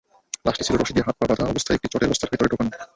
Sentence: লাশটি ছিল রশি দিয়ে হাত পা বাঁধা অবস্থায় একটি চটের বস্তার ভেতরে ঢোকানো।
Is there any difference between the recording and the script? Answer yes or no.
no